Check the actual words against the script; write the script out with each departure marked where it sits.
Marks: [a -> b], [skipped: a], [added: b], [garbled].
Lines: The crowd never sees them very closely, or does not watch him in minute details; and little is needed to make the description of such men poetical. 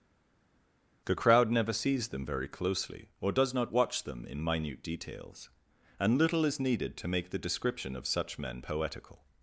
The crowd never sees them very closely, or does not watch [him -> them] in minute details; and little is needed to make the description of such men poetical.